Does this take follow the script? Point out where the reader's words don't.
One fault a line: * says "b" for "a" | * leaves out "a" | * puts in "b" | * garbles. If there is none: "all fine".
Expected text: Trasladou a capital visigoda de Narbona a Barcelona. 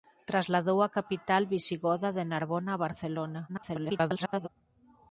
* garbles